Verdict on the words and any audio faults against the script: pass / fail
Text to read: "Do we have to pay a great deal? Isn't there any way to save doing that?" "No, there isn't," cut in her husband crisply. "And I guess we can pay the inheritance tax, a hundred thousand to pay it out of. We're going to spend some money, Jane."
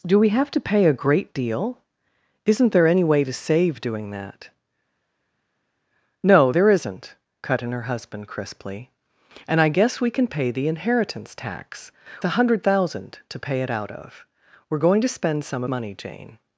pass